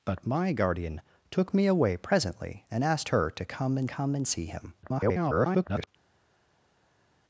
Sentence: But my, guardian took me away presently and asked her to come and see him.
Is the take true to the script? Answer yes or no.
no